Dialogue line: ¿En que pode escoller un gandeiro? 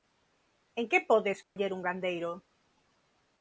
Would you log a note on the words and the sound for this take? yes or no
yes